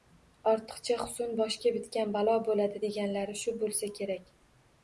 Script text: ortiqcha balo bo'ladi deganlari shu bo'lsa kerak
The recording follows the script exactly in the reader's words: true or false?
false